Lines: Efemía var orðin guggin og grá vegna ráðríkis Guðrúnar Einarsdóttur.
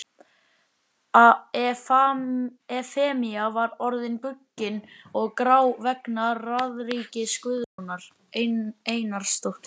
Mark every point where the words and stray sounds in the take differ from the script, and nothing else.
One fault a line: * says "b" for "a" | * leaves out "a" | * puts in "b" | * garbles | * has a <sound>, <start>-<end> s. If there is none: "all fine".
* has a dropout, 7.6-7.8 s